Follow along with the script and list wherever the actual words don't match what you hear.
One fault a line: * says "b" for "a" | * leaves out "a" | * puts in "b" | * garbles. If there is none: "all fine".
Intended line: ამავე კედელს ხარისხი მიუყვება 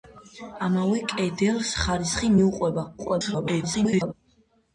* garbles